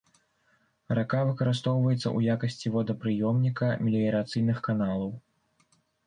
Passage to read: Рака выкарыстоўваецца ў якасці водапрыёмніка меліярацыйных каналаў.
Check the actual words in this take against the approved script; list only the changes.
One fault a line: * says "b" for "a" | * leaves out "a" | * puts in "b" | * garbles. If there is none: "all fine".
all fine